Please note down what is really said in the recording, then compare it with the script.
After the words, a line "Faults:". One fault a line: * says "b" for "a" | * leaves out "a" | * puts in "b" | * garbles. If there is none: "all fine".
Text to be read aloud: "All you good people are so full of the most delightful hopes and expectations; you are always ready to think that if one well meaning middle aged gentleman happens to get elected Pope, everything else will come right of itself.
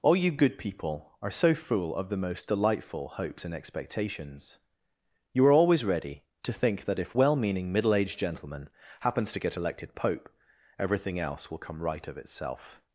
"All you good people are so full of the most delightful hopes and expectations; you are always ready to think that if well meaning middle aged gentleman happens to get elected Pope, everything else will come right of itself.
Faults:
* leaves out "one"